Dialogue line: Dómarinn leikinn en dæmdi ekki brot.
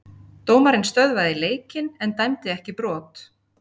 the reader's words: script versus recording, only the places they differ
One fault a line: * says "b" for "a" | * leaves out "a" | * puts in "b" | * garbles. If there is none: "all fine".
* puts in "stöðvaði"